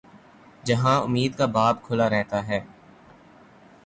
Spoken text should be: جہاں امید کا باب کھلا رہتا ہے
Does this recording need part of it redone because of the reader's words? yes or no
no